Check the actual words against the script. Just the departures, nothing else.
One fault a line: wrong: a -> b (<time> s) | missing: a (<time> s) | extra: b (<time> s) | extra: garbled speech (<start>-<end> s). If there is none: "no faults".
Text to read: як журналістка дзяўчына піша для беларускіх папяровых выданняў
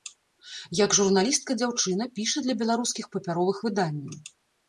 no faults